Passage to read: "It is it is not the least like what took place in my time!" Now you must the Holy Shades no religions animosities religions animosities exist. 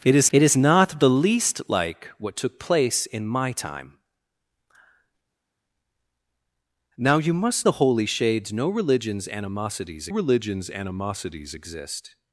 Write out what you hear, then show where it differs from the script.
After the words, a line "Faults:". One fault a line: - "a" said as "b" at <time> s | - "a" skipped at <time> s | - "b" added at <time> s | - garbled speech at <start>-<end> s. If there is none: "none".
"It is it is not the least like what took place in my time!" Now you must the Holy Shades no religions animosities religions animosities exist.
Faults:
none